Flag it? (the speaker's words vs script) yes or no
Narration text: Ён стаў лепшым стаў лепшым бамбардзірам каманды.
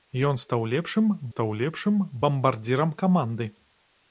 no